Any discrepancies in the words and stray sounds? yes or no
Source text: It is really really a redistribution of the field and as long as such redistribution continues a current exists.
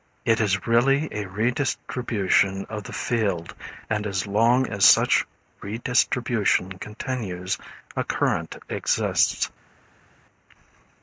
yes